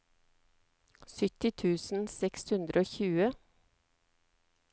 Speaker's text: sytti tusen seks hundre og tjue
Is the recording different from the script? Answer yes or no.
no